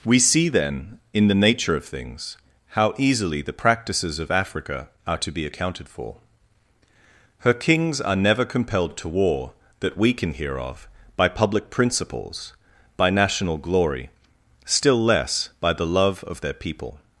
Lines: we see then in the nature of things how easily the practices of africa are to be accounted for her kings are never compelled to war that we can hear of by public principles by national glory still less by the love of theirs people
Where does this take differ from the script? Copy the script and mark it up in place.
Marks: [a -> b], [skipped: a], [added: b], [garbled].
we see then in the nature of things how easily the practices of africa are to be accounted for her kings are never compelled to war that we can hear of by public principles by national glory still less by the love of [theirs -> their] people